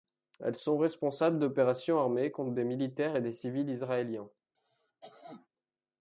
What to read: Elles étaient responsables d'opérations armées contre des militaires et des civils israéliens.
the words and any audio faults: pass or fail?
fail